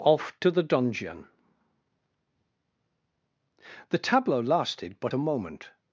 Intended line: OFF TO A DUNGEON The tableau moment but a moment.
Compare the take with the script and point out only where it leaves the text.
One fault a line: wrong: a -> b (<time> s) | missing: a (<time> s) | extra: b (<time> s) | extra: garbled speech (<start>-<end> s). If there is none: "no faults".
wrong: A -> THE (0.5 s)
wrong: moment -> lasted (4.4 s)